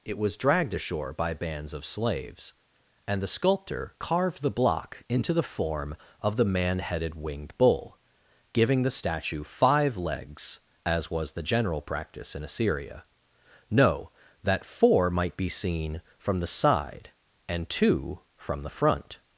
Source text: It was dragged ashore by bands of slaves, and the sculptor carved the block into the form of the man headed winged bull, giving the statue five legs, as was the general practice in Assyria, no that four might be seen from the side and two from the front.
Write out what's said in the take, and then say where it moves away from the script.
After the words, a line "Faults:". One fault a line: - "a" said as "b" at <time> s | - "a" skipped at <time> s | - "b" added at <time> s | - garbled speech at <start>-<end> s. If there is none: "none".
It was dragged ashore by bands of slaves, and the sculptor carved the block into the form of the man headed winged bull, giving the statue five legs, as was the general practice in Assyria, no that four might be seen from the side and two from the front.
Faults:
none